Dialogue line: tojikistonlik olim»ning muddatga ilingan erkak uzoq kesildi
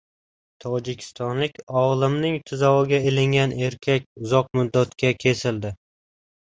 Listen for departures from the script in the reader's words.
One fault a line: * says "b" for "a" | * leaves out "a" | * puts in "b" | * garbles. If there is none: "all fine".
* says "tuzog‘iga" for "muddatga"
* puts in "muddatga"